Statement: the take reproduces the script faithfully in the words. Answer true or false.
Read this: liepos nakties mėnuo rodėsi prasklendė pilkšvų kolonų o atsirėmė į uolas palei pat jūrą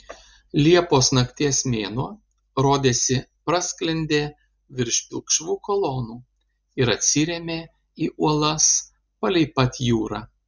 false